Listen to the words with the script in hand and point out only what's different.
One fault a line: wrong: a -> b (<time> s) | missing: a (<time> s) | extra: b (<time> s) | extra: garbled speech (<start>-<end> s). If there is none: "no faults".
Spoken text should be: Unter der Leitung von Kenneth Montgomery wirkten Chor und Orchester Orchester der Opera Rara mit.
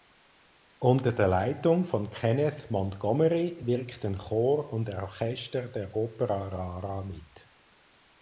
missing: Orchester (5.7 s)